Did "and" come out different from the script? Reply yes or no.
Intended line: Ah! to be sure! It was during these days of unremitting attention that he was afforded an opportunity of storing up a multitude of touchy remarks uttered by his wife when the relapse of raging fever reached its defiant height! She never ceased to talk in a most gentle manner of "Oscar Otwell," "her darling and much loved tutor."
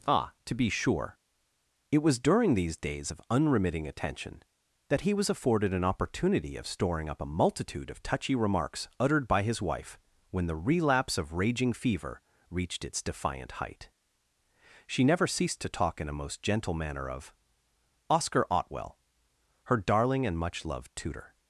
no